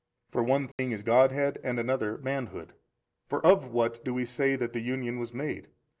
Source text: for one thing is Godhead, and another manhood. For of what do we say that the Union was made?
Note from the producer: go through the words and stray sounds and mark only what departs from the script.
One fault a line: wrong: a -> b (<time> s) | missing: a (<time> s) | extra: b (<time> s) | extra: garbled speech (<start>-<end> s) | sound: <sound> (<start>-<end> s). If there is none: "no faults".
sound: dropout (0.7-0.8 s)